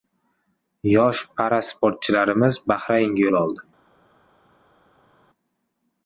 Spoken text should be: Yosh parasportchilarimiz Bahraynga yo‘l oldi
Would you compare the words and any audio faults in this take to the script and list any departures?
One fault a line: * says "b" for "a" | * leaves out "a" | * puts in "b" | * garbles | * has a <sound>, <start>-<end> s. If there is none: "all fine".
all fine